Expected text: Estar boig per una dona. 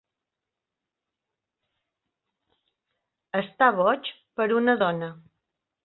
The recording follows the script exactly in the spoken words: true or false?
true